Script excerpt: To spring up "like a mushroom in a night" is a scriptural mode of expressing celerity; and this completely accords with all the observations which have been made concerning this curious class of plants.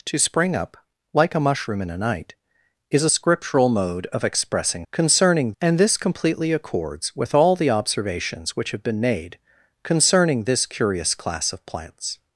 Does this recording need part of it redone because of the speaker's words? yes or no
yes